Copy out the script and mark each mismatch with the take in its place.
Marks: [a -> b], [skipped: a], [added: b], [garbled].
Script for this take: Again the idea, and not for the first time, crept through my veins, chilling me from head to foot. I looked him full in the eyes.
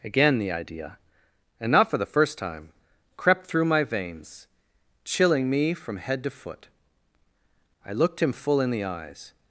Again the idea, and not for the first time, crept through my veins, chilling me from head to foot. I looked him full in the eyes.